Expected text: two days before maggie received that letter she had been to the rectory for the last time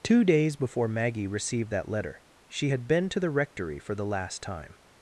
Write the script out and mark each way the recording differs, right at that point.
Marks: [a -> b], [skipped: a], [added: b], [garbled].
two days before maggie received that letter she had been to the rectory for the last time